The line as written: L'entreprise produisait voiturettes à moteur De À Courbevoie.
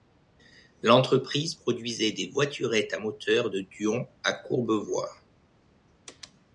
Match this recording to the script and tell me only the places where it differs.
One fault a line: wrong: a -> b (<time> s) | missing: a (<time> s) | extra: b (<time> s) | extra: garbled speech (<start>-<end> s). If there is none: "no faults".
extra: des (2.1 s)
extra: Dion (3.6 s)